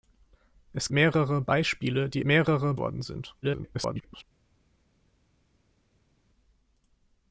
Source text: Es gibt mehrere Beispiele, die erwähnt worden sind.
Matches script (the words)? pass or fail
fail